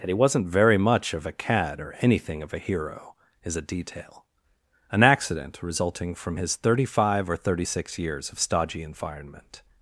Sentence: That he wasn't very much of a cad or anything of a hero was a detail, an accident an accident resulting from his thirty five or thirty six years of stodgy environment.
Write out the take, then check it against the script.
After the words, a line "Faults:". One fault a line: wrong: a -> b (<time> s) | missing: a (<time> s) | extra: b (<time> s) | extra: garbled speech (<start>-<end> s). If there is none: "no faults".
That he wasn't very much of a cad or anything of a hero is a detail, an accident resulting from his thirty five or thirty six years of stodgy environment.
Faults:
wrong: was -> is (3.4 s)
missing: an accident (5.6 s)